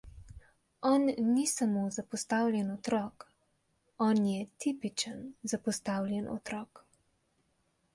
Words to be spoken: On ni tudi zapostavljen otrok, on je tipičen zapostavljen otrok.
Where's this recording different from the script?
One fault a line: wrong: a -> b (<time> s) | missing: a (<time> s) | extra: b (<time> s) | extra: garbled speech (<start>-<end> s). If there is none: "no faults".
wrong: tudi -> samo (1.5 s)